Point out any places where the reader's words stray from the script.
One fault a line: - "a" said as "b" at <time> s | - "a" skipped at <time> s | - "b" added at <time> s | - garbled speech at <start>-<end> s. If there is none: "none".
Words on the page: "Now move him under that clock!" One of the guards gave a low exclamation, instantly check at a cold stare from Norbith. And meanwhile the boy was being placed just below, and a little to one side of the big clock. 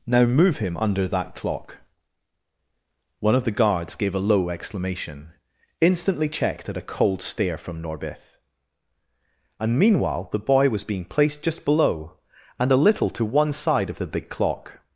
- "check" said as "checked" at 6.3 s